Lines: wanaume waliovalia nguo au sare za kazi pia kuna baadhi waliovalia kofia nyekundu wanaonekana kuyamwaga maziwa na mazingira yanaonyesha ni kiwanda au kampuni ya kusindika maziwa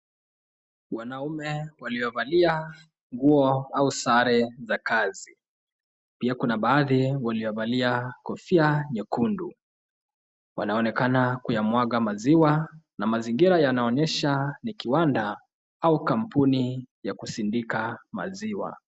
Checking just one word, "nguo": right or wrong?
right